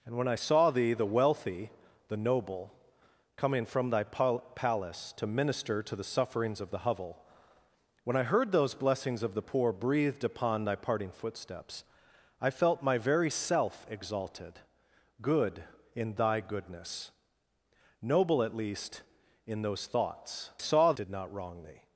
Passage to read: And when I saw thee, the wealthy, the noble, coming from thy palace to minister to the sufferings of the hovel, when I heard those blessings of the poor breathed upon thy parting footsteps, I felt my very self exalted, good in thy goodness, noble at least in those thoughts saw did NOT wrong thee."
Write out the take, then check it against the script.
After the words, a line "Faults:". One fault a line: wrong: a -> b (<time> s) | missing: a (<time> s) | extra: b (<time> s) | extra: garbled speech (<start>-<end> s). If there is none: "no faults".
And when I saw thee, the wealthy, the noble, coming from thy palace to minister to the sufferings of the hovel, when I heard those blessings of the poor breathed upon thy parting footsteps, I felt my very self exalted, good in thy goodness, noble at least in those thoughts saw did NOT wrong thee."
Faults:
no faults